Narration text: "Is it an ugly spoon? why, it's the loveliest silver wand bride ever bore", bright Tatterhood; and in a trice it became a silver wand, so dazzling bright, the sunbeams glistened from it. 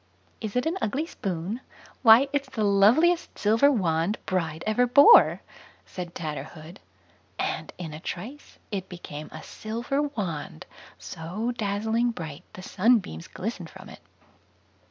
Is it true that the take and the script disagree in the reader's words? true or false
true